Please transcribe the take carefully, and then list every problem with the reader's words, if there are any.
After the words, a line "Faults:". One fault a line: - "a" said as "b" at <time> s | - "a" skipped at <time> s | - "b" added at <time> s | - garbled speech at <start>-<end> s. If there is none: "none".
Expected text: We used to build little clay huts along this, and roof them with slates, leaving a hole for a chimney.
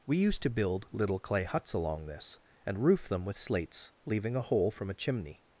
We used to build little clay huts along this, and roof them with slates, leaving a hole from a chimney.
Faults:
- "for" said as "from" at 4.7 s